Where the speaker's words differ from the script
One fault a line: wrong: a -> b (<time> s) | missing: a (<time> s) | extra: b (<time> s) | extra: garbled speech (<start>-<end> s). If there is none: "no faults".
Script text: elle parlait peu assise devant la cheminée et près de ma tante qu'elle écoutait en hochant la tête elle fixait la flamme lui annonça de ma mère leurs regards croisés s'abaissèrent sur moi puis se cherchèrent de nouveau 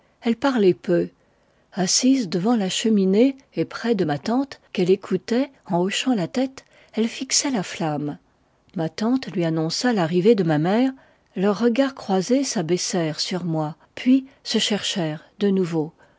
extra: ma tante (8.8 s)
extra: l'arrivée (9.9 s)